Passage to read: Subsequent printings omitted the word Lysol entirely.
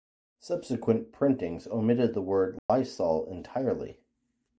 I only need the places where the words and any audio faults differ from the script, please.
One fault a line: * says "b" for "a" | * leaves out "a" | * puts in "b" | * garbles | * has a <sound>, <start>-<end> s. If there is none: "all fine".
* has a dropout, 2.6-2.7 s